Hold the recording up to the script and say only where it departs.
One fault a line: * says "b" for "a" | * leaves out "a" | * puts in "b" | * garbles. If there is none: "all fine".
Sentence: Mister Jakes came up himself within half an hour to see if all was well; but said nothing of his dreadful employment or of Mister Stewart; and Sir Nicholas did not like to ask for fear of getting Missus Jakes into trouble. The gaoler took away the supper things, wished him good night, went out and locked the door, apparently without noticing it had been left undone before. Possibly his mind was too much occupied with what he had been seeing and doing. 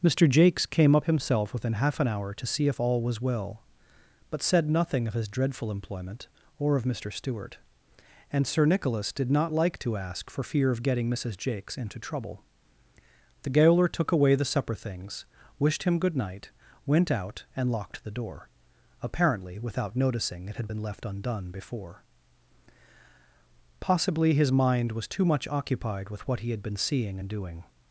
all fine